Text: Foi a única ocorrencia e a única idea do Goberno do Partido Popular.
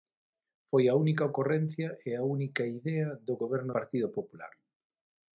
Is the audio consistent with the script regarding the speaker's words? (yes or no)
no